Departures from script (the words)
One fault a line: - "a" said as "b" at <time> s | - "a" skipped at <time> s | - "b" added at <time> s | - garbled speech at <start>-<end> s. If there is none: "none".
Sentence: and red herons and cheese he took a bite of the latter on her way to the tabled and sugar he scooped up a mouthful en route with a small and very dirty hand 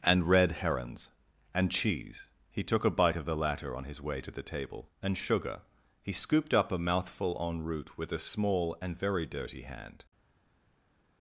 - "her" said as "his" at 3.8 s
- "tabled" said as "table" at 4.4 s